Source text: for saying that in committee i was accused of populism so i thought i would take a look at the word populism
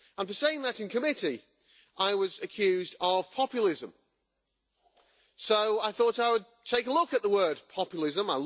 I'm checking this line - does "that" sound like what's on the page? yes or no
yes